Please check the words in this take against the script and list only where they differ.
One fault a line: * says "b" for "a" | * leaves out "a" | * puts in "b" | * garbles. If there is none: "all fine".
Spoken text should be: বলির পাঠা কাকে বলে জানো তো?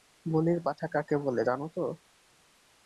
all fine